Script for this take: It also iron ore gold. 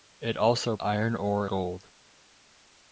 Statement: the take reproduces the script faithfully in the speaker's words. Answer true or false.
true